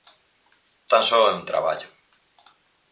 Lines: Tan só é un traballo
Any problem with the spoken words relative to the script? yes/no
no